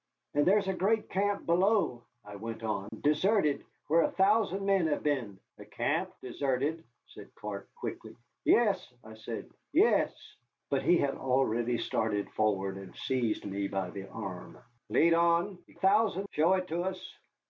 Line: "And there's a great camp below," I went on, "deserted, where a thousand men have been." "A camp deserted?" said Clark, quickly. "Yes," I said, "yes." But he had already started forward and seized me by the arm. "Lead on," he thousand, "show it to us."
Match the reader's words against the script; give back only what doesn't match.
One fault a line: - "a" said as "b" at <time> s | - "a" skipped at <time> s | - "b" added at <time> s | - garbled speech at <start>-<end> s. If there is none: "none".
none